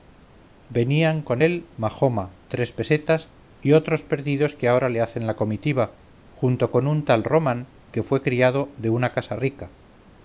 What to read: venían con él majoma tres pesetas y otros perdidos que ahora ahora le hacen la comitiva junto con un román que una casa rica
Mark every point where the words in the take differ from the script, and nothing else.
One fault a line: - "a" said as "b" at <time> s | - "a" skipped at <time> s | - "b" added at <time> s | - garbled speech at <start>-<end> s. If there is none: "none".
- "ahora" skipped at 4.9 s
- "tal" added at 7.0 s
- "fue criado de" added at 8.0 s